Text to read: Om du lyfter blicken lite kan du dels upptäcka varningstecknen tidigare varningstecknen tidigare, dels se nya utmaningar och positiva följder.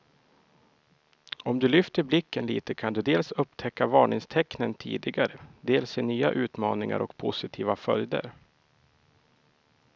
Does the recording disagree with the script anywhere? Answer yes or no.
yes